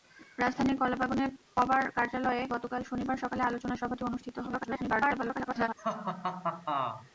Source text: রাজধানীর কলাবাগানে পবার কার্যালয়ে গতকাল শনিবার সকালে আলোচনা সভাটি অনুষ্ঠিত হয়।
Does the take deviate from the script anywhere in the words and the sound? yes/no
yes